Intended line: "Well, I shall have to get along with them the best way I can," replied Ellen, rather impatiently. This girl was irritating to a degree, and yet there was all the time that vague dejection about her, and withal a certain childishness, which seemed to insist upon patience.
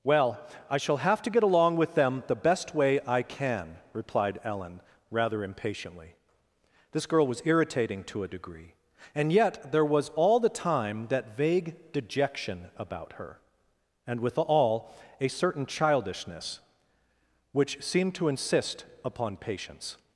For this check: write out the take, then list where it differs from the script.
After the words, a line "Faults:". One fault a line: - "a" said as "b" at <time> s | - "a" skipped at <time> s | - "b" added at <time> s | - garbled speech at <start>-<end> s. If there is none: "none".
"Well, I shall have to get along with them the best way I can," replied Ellen, rather impatiently. This girl was irritating to a degree, and yet there was all the time that vague dejection about her, and withal a certain childishness, which seemed to insist upon patience.
Faults:
none